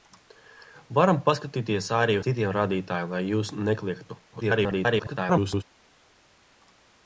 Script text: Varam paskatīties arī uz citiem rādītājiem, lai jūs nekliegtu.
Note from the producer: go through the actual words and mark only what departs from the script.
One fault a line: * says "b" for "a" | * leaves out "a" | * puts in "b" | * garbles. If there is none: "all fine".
* leaves out "uz"
* garbles